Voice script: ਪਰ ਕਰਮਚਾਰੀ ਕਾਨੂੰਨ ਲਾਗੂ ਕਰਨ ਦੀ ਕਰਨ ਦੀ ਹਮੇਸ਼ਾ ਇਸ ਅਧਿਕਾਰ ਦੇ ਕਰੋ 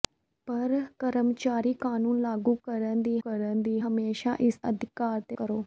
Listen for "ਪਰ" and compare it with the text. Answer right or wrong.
right